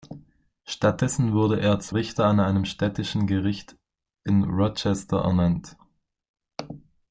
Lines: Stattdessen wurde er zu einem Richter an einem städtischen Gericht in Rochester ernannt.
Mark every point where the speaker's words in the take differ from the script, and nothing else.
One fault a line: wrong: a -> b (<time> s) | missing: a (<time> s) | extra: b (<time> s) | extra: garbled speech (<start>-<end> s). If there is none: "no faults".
missing: einem (1.9 s)